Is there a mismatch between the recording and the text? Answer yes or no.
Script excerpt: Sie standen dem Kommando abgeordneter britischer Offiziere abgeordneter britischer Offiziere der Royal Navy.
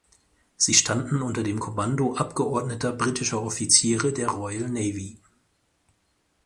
yes